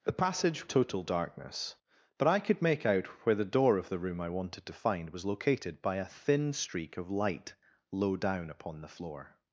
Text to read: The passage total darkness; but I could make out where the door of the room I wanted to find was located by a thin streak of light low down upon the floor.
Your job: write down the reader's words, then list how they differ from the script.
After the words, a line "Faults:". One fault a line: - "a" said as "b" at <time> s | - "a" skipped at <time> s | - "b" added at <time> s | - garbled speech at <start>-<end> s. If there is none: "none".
The passage total darkness; but I could make out where the door of the room I wanted to find was located by a thin streak of light low down upon the floor.
Faults:
none